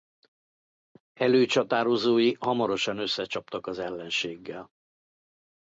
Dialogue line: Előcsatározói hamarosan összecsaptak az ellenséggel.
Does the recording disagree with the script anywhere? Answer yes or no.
no